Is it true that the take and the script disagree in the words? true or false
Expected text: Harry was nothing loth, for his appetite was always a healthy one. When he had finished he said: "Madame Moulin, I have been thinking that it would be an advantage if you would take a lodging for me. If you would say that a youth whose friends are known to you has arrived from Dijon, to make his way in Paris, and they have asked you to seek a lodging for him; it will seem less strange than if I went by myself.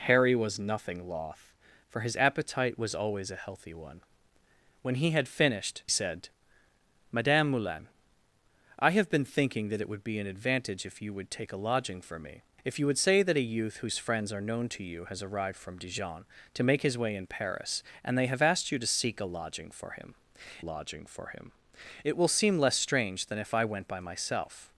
true